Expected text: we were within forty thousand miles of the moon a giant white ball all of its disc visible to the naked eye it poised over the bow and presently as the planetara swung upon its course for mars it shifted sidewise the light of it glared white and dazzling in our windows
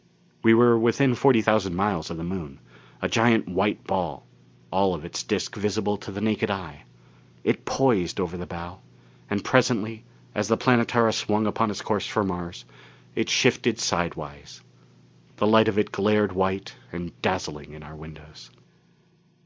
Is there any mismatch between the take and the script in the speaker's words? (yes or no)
no